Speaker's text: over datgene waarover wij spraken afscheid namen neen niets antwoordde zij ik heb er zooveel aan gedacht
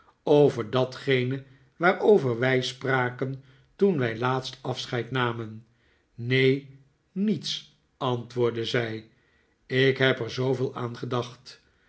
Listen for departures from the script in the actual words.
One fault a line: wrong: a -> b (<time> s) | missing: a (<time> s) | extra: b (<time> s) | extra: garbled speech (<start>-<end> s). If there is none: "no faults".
extra: toen wij laatst (3.8 s)